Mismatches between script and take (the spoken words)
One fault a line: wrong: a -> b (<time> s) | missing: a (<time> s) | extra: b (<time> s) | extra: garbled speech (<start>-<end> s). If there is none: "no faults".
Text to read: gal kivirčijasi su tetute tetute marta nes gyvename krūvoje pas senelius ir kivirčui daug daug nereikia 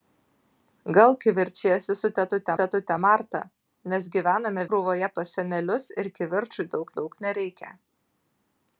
no faults